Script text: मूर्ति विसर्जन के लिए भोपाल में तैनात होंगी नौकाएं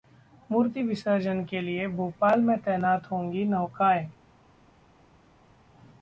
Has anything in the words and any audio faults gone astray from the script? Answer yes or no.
no